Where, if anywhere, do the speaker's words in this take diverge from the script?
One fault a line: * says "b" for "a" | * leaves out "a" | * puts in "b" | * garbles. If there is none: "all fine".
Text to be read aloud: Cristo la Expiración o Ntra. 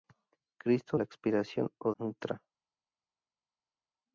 all fine